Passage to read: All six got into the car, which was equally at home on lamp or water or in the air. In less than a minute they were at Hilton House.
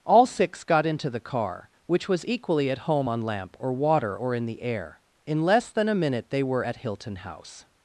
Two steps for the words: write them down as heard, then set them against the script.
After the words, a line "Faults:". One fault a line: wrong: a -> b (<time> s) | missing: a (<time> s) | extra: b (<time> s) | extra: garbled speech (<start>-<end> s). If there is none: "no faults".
All six got into the car, which was equally at home on lamp or water or in the air. In less than a minute they were at Hilton House.
Faults:
no faults